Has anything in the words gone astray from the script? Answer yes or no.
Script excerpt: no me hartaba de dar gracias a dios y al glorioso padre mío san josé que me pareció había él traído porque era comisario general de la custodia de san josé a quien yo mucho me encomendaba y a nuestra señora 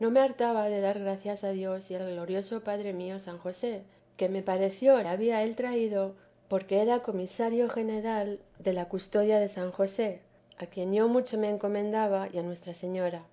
no